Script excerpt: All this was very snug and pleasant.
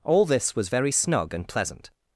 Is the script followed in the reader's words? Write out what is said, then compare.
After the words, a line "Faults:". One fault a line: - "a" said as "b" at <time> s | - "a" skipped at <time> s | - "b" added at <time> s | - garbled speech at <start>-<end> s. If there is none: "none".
All this was very snug and pleasant.
Faults:
none